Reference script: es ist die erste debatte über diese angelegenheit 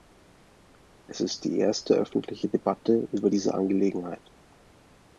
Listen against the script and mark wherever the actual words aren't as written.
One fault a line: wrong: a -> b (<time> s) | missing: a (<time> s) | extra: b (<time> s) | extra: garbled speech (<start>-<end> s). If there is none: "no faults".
extra: öffentliche (1.9 s)